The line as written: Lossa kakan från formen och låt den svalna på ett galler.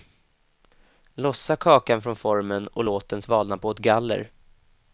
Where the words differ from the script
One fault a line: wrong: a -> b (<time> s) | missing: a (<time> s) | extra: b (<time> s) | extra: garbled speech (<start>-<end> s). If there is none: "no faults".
no faults